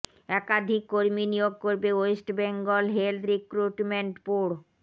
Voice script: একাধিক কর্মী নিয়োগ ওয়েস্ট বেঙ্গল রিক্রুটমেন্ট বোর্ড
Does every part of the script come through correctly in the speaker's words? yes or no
no